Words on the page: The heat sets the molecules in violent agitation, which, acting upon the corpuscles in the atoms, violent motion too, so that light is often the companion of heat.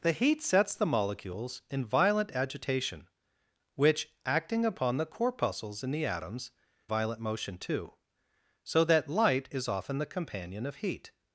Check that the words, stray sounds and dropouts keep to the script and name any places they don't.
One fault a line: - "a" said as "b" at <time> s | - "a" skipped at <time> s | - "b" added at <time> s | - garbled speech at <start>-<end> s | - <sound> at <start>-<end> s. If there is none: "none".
none